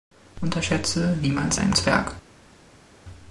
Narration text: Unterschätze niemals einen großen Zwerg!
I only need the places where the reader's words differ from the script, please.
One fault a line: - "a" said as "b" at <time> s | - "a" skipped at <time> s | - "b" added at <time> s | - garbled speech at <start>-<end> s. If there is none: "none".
- "großen" skipped at 1.7 s